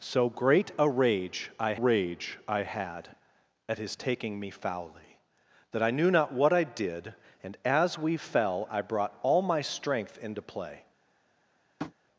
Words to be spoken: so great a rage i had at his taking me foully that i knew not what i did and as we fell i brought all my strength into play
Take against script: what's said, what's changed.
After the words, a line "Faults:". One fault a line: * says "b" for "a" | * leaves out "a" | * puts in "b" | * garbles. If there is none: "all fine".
so great a rage i rage i had at his taking me foully that i knew not what i did and as we fell i brought all my strength into play
Faults:
* puts in "rage i"